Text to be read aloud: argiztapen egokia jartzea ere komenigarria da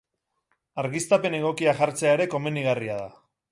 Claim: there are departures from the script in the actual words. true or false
false